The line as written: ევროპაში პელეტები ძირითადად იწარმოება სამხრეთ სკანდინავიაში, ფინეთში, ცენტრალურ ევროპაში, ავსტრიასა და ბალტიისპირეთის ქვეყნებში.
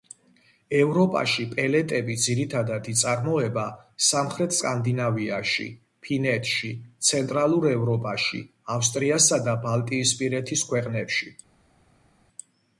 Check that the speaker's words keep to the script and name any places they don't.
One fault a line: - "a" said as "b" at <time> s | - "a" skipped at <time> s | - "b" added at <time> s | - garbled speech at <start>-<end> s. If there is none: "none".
none